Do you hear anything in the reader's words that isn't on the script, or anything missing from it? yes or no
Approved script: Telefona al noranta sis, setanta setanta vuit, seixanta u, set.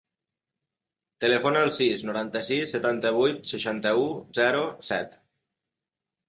yes